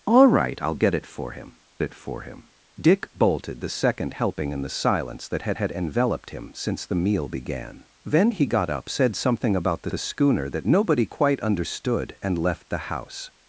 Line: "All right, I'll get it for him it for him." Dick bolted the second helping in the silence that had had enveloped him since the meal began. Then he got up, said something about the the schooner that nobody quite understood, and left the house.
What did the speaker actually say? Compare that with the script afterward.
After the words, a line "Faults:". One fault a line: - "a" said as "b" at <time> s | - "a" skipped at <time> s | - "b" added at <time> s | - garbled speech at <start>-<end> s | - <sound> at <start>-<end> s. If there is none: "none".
"All right, I'll get it for him it for him." Dick bolted the second helping in the silence that had had enveloped him since the meal began. Then he got up, said something about the the schooner that nobody quite understood, and left the house.
Faults:
none